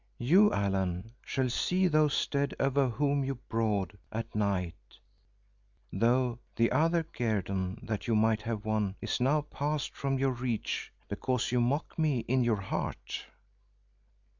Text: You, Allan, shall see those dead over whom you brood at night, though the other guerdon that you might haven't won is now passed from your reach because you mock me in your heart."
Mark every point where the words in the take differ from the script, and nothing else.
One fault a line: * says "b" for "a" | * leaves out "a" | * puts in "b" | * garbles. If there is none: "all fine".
* says "have" for "haven't"